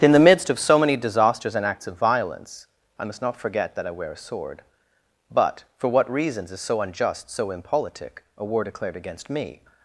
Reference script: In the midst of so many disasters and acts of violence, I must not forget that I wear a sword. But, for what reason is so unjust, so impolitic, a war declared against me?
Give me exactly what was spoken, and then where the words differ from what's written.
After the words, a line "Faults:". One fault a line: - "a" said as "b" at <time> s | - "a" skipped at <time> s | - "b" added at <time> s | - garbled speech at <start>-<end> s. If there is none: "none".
In the midst of so many disasters and acts of violence, I must not forget that I wear a sword. But, for what reasons is so unjust, so impolitic, a war declared against me?
Faults:
- "reason" said as "reasons" at 6.1 s